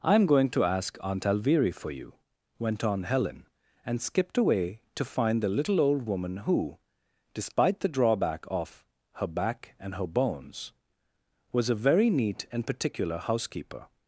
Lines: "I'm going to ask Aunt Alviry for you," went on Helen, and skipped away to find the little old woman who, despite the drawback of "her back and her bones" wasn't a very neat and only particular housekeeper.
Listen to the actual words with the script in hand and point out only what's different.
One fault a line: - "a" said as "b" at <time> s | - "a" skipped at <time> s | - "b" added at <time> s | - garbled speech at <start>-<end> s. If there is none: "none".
- "wasn't" said as "was" at 11.5 s
- "only" skipped at 12.6 s